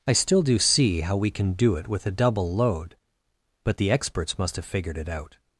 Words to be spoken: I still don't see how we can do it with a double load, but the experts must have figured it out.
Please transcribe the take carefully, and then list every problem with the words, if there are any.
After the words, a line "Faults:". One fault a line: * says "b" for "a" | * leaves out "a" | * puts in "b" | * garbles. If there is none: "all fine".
I still do see how we can do it with a double load, but the experts must have figured it out.
Faults:
* says "do" for "don't"